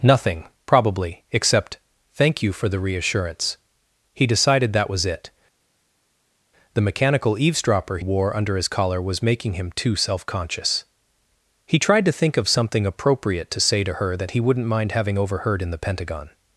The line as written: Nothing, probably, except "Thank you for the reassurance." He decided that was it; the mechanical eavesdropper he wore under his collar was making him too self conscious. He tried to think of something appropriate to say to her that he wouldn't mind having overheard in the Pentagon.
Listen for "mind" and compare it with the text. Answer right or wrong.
right